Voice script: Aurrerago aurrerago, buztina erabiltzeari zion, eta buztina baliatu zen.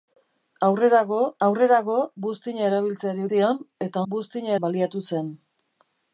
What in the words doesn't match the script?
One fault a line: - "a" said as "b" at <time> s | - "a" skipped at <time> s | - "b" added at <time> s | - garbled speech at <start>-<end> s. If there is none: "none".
none